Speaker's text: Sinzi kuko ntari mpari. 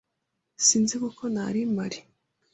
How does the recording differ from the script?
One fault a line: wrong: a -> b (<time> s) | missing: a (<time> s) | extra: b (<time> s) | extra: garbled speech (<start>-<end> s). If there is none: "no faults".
no faults